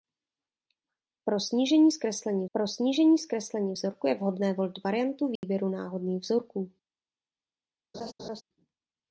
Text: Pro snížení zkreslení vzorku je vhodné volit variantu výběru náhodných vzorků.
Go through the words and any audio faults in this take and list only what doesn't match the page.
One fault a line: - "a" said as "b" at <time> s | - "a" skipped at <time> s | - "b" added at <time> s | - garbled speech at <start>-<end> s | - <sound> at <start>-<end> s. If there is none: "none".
- "pro snížení zkreslení" added at 2.5 s
- dropout at 5.4-5.4 s
- laugh at 7.9-8.4 s